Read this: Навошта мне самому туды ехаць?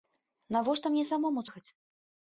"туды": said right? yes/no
no